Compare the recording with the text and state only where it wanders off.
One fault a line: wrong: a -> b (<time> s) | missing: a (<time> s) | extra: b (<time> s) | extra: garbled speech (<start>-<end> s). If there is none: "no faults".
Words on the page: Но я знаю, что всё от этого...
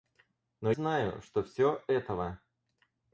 missing: я (0.7 s)
missing: от (1.8 s)